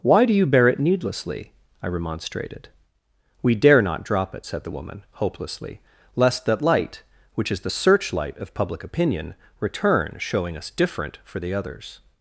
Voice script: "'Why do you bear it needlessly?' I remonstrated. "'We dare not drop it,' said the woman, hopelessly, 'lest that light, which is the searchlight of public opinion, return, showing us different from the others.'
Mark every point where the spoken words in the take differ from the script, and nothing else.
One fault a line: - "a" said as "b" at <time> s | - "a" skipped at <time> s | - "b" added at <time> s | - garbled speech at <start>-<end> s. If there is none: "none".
- "from" said as "for" at 11.2 s